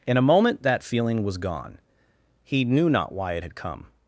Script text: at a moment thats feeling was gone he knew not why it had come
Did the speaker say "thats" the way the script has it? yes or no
no